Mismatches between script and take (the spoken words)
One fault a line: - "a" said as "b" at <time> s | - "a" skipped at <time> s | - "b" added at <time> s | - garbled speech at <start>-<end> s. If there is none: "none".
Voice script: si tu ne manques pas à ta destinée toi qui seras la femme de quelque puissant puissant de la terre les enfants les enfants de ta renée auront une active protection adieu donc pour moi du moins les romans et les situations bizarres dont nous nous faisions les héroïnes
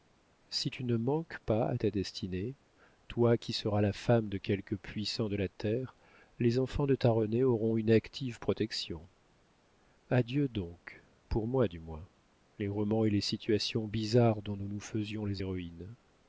- "puissant" skipped at 5.3 s
- "les enfants" skipped at 6.9 s